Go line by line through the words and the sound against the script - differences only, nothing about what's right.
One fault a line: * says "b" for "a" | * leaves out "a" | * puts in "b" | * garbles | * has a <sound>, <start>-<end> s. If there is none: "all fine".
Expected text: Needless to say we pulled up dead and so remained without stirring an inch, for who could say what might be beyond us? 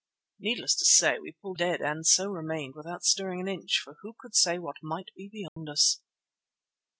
* leaves out "up"
* has a dropout, 5.5-5.6 s